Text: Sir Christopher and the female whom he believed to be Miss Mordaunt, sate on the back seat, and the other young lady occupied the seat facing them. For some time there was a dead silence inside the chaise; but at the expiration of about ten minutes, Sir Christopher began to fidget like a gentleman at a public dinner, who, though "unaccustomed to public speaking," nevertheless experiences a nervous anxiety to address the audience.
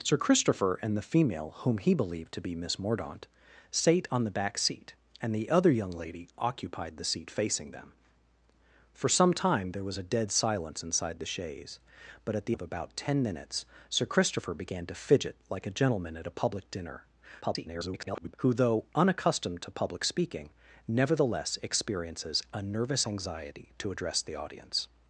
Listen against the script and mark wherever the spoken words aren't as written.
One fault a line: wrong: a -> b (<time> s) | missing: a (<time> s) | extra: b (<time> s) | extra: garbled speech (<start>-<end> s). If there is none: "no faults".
missing: expiration (12.6 s)
extra: garbled speech (17.4-18.3 s)